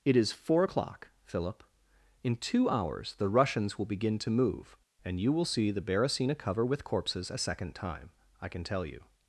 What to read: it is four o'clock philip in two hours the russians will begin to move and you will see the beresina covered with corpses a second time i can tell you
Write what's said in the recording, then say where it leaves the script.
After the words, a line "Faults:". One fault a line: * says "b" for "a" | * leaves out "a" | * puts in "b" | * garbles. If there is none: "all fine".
it is four o'clock philip in two hours the russians will begin to move and you will see the beresina cover with corpses a second time i can tell you
Faults:
* says "cover" for "covered"